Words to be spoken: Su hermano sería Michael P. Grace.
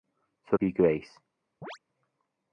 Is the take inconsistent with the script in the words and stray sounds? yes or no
yes